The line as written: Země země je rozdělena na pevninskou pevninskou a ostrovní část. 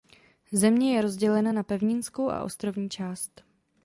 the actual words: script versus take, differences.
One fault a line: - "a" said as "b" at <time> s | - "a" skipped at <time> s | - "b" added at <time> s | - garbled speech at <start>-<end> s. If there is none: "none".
- "země" skipped at 0.9 s
- "pevninskou" skipped at 2.3 s